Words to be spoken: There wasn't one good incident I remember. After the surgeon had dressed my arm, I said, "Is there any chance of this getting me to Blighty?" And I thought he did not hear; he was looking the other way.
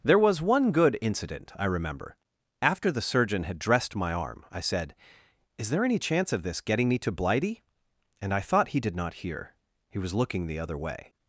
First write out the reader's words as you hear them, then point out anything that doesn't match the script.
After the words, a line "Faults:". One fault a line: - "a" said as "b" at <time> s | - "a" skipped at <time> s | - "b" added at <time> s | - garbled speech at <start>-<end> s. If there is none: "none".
There was one good incident I remember. After the surgeon had dressed my arm, I said, "Is there any chance of this getting me to Blighty?" And I thought he did not hear; he was looking the other way.
Faults:
- "wasn't" said as "was" at 0.2 s